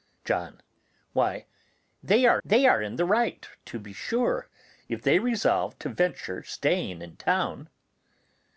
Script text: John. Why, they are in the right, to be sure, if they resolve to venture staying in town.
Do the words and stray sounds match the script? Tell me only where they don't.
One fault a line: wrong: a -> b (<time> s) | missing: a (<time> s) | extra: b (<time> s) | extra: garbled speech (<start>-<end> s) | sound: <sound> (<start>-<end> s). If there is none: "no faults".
extra: they are (2.4 s)